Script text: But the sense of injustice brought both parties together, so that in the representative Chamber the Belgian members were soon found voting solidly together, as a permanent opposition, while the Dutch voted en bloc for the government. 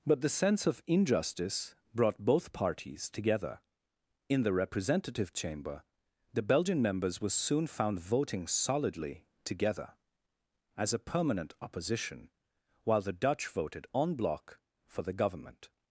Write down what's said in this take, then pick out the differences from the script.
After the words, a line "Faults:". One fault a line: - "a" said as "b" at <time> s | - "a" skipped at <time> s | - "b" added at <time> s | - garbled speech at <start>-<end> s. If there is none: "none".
But the sense of injustice brought both parties together, in the representative Chamber the Belgian members were soon found voting solidly together, as a permanent opposition, while the Dutch voted en bloc for the government.
Faults:
- "so that" skipped at 3.6 s